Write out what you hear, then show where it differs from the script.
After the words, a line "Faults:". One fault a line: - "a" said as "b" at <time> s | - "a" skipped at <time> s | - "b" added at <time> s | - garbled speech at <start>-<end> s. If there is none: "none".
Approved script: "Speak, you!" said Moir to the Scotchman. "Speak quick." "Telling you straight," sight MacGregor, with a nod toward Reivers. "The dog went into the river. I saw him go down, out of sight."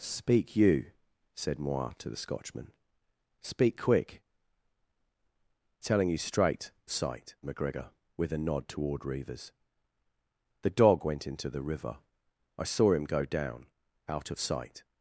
"Speak, you!" said Moir to the Scotchman. "Speak quick." "Telling you straight," sight MacGregor, with a nod toward Reivers. "The dog went into the river. I saw him go down, out of sight."
Faults:
none